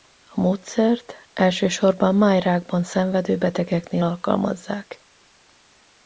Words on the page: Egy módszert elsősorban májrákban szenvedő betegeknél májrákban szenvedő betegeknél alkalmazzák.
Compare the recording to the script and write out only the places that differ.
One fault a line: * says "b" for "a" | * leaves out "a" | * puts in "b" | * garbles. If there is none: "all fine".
* says "A" for "Egy"
* leaves out "májrákban szenvedő betegeknél"